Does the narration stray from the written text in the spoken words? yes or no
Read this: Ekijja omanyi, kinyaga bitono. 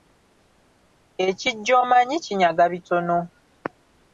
no